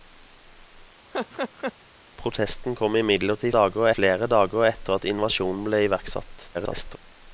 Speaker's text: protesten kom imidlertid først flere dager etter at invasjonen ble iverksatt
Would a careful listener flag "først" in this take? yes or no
yes